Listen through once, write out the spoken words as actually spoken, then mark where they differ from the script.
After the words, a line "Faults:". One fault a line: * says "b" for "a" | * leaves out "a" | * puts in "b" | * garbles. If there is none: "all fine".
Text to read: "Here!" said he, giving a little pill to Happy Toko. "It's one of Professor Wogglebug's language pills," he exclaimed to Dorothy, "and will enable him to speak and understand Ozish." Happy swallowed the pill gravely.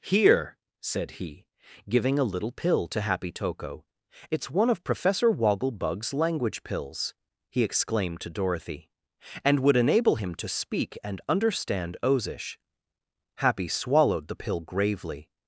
"Here!" said he, giving a little pill to Happy Toko. "It's one of Professor Wogglebug's language pills," he exclaimed to Dorothy, "and would enable him to speak and understand Ozish." Happy swallowed the pill gravely.
Faults:
* says "would" for "will"